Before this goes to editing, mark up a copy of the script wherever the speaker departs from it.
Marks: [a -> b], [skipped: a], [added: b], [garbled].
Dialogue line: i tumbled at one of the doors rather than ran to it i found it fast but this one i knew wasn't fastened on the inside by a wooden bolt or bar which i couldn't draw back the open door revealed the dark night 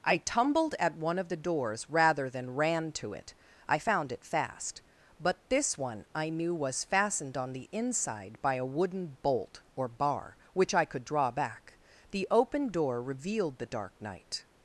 i tumbled at one of the doors rather than ran to it i found it fast but this one i knew [wasn't -> was] fastened on the inside by a wooden bolt or bar which i [couldn't -> could] draw back the open door revealed the dark night